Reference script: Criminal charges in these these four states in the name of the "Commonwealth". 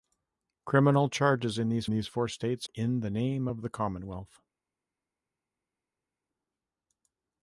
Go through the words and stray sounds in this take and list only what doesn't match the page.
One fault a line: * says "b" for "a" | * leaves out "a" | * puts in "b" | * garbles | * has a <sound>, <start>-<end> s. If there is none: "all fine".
all fine